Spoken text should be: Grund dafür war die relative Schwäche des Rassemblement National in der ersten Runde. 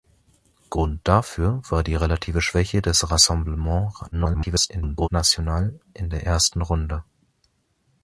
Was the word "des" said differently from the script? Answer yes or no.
no